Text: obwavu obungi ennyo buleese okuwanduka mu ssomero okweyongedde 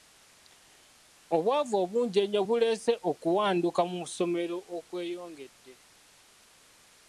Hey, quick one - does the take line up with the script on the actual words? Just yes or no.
yes